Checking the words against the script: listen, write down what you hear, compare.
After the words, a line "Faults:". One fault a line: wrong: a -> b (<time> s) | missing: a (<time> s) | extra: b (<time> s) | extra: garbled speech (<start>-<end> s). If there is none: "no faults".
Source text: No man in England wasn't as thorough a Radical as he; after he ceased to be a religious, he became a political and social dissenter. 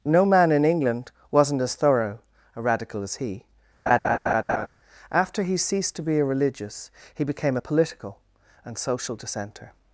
No man in England wasn't as thorough a Radical as he; after he ceased to be a religious, he became a political and social dissenter.
Faults:
no faults